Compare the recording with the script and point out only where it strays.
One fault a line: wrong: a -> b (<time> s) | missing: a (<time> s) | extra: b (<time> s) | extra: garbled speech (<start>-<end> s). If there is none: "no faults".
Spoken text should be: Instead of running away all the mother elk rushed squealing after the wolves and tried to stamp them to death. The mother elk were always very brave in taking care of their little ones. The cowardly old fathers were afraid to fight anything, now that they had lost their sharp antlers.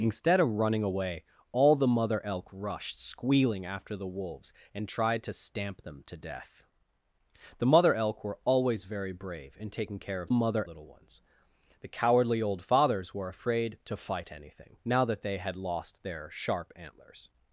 wrong: their -> mother (10.3 s)